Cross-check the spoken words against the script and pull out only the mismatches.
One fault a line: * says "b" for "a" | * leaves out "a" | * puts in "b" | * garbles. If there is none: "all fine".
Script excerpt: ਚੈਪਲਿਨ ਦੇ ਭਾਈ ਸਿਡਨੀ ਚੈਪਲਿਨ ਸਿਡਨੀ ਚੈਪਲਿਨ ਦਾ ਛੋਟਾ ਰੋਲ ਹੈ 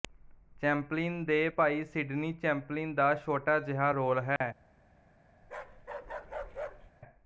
* leaves out "ਸਿਡਨੀ ਚੈਪਲਿਨ"
* puts in "ਜਿਹਾ"